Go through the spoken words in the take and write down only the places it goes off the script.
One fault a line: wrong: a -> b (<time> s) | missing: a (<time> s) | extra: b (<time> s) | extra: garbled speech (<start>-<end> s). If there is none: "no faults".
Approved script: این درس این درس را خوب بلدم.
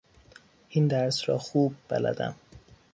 missing: این درس (1.3 s)